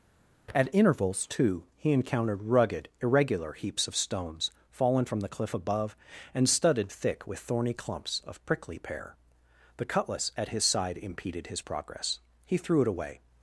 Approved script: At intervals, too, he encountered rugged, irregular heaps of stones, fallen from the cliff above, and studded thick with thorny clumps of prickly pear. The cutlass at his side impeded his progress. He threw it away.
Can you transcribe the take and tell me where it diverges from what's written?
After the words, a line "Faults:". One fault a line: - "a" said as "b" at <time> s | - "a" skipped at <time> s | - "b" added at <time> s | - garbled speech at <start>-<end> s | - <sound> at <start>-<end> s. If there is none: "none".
At intervals, too, he encountered rugged, irregular heaps of stones, fallen from the cliff above, and studded thick with thorny clumps of prickly pear. The cutlass at his side impeded his progress. He threw it away.
Faults:
none